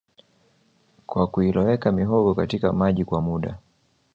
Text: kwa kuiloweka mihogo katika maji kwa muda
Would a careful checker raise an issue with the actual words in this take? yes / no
no